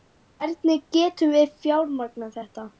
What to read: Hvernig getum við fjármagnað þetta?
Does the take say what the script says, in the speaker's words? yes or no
yes